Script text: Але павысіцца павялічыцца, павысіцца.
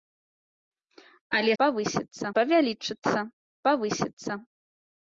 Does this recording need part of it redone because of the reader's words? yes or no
no